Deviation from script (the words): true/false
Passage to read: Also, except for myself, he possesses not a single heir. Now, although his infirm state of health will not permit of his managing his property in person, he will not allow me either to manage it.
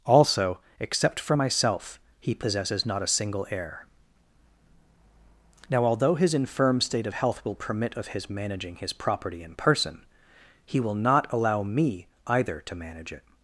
true